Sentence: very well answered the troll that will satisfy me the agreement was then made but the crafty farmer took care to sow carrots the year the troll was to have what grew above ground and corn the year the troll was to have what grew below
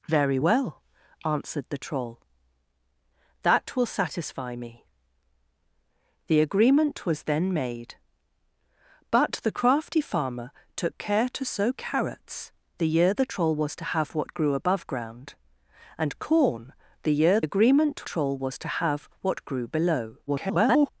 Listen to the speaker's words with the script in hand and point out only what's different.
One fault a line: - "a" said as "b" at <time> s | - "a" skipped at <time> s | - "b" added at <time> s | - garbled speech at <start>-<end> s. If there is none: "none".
- "the" said as "agreement" at 17.4 s
- garbled speech at 20.3-20.9 s